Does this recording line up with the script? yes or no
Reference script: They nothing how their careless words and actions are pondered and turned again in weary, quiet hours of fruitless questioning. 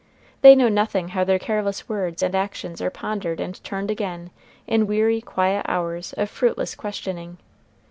no